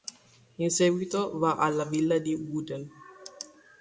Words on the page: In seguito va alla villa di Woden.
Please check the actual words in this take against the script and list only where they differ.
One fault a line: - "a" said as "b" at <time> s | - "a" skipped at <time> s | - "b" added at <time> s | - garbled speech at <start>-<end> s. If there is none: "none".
none